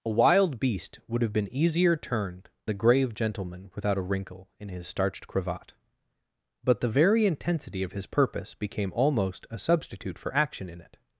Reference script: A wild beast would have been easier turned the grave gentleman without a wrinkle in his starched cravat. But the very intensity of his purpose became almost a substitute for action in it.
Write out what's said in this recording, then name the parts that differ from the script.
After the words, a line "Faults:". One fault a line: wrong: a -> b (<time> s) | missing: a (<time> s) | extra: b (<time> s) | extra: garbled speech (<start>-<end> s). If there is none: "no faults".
A wild beast would have been easier turned the grave gentleman without a wrinkle in his starched cravat. But the very intensity of his purpose became almost a substitute for action in it.
Faults:
no faults